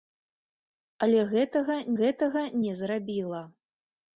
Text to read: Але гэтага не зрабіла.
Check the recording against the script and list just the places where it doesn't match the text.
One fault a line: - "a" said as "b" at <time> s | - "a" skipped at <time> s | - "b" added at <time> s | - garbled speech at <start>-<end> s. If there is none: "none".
- "гэтага" added at 2.0 s